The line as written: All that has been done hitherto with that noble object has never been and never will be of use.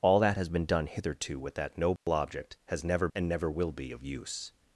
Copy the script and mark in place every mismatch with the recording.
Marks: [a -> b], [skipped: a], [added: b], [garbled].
All that has been done hitherto with that noble object has never [skipped: been] and never will be of use.